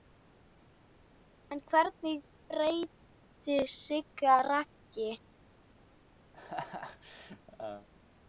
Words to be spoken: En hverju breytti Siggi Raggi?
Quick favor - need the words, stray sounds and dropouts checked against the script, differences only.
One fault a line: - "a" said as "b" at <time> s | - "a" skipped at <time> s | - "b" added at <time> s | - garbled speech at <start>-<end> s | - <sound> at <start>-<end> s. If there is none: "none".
- laugh at 6.3-7.9 s